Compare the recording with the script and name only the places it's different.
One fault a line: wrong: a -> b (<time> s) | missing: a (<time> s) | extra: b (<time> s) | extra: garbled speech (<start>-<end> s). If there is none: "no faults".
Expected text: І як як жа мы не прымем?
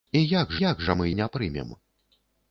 no faults